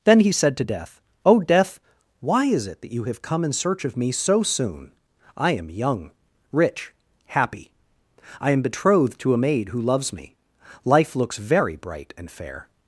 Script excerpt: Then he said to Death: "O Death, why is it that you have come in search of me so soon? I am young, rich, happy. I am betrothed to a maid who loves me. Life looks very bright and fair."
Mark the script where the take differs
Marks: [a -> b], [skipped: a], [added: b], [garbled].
Then he said to Death: "O Death, why is it that you have come in search of me so soon? I am young, rich, happy. I am betrothed to a maid who loves me. Life looks very bright and fair."